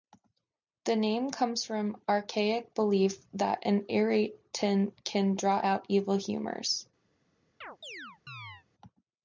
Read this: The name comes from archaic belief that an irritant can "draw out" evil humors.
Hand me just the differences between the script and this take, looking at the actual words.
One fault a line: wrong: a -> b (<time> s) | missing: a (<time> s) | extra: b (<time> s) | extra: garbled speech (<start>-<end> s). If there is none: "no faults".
no faults